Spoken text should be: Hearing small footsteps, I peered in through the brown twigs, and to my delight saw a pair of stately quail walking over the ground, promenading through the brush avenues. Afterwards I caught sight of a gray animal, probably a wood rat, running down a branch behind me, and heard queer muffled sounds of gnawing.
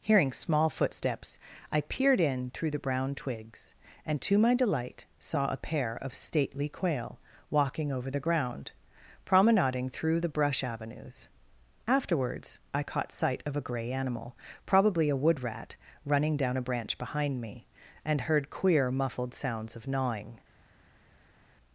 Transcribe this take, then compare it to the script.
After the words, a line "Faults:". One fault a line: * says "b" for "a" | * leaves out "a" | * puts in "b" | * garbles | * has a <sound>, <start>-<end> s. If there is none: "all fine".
Hearing small footsteps, I peered in through the brown twigs, and to my delight saw a pair of stately quail walking over the ground, promenading through the brush avenues. Afterwards I caught sight of a gray animal, probably a wood rat, running down a branch behind me, and heard queer muffled sounds of gnawing.
Faults:
all fine